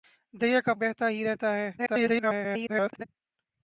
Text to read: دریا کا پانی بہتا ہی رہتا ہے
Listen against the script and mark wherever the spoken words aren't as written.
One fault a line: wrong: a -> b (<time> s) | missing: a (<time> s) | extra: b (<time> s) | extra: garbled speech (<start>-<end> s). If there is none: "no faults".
missing: پانی (0.7 s)
extra: garbled speech (1.8-3.0 s)